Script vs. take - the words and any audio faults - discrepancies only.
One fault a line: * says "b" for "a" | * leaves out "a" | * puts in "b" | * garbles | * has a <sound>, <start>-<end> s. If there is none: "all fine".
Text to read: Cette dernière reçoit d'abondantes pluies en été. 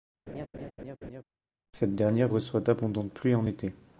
* has a laugh, 0.3-1.2 s